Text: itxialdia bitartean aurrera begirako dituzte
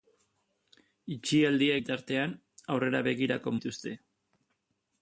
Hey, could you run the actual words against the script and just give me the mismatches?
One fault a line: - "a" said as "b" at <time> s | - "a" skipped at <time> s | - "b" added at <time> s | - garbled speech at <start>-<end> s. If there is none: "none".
none